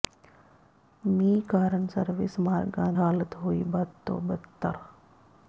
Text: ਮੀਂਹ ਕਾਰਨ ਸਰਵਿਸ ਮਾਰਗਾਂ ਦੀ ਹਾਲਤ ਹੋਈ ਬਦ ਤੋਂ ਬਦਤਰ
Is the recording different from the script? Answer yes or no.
yes